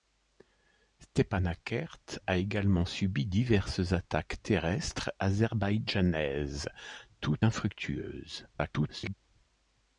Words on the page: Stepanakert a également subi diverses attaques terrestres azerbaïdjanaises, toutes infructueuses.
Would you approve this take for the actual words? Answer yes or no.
no